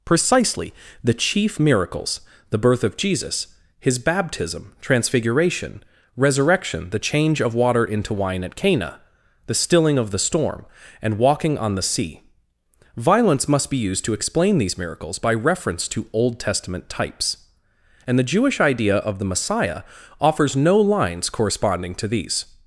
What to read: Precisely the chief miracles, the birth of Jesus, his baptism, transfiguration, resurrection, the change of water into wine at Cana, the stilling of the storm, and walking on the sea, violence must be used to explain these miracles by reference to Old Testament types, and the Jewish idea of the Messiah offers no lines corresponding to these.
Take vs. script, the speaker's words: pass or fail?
pass